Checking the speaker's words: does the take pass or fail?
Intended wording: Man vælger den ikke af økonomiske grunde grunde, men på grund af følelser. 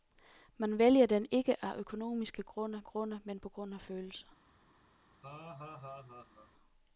pass